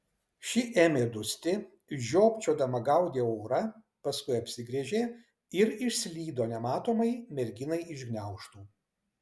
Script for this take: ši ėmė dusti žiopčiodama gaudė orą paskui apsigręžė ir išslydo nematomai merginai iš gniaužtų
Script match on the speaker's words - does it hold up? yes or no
yes